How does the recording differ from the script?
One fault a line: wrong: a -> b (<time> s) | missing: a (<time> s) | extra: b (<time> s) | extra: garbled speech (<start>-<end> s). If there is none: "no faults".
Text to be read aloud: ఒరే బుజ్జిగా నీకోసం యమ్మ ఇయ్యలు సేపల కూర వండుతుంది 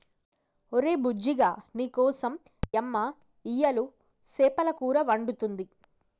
no faults